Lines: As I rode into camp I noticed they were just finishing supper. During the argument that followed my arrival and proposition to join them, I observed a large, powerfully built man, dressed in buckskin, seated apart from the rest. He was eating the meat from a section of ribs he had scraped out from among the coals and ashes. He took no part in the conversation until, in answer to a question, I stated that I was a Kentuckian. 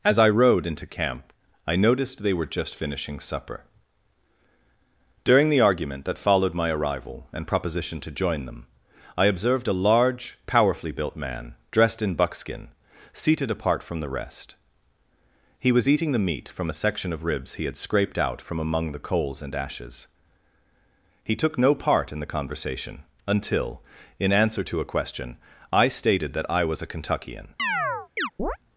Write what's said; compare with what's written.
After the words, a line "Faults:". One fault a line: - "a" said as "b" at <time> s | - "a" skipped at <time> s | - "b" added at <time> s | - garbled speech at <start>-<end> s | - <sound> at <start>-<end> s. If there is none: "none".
As I rode into camp I noticed they were just finishing supper. During the argument that followed my arrival and proposition to join them, I observed a large, powerfully built man, dressed in buckskin, seated apart from the rest. He was eating the meat from a section of ribs he had scraped out from among the coals and ashes. He took no part in the conversation until, in answer to a question, I stated that I was a Kentuckian.
Faults:
- chirp at 27.6-28.6 s